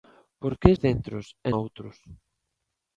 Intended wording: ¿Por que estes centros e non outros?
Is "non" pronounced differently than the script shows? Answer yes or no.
yes